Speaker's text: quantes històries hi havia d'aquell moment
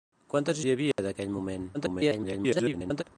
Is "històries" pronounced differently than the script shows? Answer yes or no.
yes